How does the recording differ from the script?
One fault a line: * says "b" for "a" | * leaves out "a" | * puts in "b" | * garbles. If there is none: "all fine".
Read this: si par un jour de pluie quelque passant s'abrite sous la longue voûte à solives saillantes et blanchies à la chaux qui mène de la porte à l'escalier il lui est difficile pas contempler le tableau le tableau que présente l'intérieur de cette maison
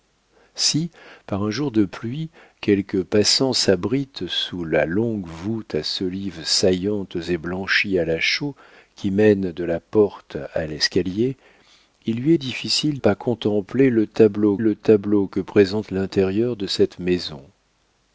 all fine